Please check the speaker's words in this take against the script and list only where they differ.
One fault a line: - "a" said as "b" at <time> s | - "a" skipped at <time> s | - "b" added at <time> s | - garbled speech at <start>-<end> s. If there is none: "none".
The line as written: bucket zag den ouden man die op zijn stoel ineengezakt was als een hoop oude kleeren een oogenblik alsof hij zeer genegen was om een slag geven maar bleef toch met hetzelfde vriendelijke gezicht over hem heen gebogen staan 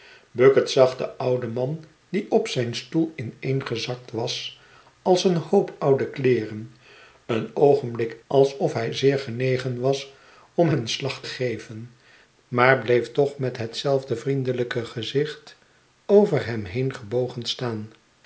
none